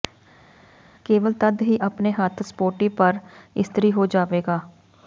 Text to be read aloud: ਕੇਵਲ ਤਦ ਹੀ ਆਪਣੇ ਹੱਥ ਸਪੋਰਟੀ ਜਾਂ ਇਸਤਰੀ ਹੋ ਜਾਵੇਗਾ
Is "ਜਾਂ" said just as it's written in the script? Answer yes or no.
no